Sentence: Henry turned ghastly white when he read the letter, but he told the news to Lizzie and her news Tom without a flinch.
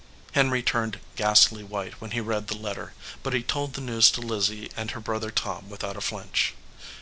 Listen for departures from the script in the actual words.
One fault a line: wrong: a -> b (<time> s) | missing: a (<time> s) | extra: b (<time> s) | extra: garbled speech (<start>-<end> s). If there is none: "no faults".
wrong: news -> brother (5.0 s)